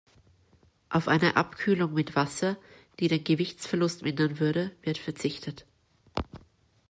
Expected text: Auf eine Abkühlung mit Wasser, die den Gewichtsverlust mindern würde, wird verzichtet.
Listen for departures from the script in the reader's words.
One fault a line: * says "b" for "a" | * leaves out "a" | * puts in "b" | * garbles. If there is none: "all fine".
all fine